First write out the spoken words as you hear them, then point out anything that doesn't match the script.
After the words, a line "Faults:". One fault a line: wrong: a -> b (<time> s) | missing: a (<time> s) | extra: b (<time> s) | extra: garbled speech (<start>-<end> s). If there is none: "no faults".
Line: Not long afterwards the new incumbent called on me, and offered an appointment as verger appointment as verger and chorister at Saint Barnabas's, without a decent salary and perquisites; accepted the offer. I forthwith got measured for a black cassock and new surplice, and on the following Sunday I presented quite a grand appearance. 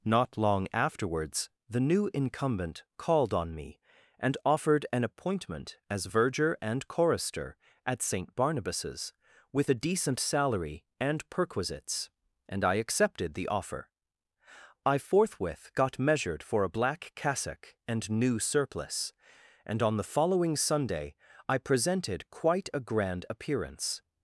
Not long afterwards the new incumbent called on me, and offered an appointment as verger and chorister at Saint Barnabas's, with a decent salary and perquisites; and I accepted the offer. I forthwith got measured for a black cassock and new surplice, and on the following Sunday I presented quite a grand appearance.
Faults:
missing: appointment as verger (6.6 s)
wrong: without -> with (9.5 s)
extra: and I (12.5 s)